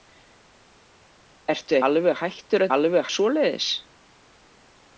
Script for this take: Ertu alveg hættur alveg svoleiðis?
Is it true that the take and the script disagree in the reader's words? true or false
false